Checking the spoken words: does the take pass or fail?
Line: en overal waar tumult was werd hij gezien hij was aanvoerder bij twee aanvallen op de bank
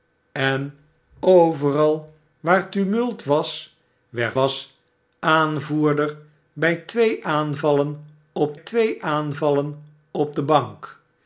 fail